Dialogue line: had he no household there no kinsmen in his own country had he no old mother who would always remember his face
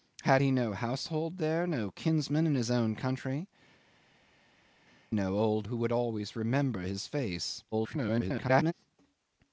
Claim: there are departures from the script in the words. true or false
true